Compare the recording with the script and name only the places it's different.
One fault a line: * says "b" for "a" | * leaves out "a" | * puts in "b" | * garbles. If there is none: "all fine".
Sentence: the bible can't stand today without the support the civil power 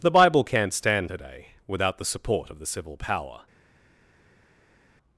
* puts in "of"